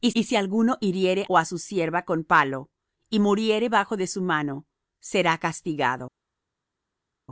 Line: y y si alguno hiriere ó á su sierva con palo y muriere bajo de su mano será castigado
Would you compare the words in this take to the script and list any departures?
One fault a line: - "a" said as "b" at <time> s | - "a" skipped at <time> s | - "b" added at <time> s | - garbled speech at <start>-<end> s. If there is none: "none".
none